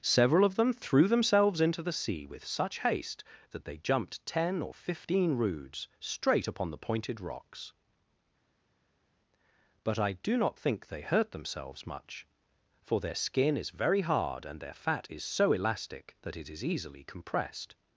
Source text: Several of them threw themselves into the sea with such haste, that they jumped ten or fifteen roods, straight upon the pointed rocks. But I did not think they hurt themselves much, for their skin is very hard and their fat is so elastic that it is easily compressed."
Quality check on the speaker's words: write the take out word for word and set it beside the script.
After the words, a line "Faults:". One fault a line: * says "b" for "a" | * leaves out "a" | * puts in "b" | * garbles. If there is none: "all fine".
Several of them threw themselves into the sea with such haste, that they jumped ten or fifteen roods, straight upon the pointed rocks. But I do not think they hurt themselves much, for their skin is very hard and their fat is so elastic that it is easily compressed."
Faults:
* says "do" for "did"